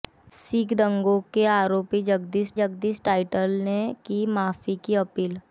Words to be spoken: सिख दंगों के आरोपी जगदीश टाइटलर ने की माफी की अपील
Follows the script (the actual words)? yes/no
no